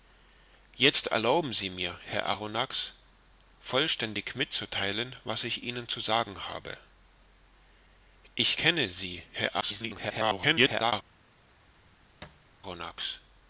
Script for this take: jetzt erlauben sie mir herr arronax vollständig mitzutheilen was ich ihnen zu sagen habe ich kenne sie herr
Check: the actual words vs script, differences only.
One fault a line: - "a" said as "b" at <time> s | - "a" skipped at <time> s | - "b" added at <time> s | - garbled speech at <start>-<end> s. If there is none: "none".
- garbled speech at 9.6-10.9 s